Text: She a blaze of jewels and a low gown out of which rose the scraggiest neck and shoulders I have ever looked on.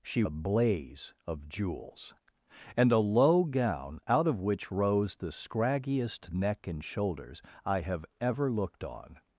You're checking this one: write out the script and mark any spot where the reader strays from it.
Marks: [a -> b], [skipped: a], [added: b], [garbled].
She a blaze of jewels and a low gown out of which rose the scraggiest neck and shoulders I have ever looked on.